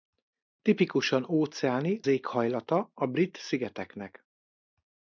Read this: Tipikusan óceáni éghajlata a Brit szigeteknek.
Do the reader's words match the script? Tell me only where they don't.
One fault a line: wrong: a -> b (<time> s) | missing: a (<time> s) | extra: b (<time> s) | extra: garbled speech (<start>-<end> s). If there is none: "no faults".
no faults